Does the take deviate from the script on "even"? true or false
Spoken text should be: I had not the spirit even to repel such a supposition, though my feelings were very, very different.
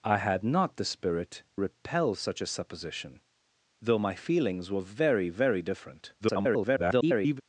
true